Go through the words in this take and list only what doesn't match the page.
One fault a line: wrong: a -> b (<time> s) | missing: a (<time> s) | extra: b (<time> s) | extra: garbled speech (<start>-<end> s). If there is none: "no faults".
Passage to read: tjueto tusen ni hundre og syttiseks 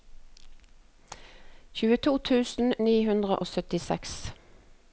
no faults